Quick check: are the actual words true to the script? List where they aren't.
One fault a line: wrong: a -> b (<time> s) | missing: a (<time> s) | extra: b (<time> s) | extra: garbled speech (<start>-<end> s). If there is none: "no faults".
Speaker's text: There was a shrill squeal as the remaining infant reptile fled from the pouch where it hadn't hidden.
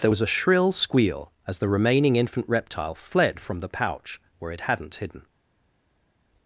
no faults